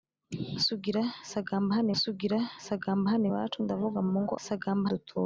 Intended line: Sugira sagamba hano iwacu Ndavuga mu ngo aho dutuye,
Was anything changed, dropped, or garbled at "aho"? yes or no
yes